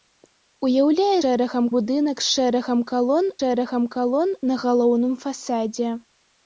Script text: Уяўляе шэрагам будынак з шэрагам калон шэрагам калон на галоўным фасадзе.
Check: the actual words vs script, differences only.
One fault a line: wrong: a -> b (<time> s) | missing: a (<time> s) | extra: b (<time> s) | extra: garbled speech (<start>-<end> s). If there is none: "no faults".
no faults